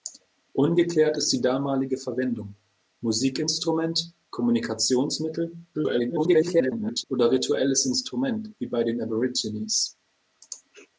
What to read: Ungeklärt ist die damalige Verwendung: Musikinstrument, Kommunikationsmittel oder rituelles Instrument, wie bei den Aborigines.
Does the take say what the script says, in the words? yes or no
no